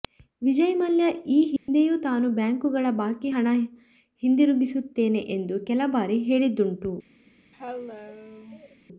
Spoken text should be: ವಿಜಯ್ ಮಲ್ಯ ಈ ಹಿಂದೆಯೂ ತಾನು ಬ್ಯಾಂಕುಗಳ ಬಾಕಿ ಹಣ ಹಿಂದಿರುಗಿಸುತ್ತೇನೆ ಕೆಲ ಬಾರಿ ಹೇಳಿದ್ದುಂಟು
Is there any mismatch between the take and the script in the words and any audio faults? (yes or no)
yes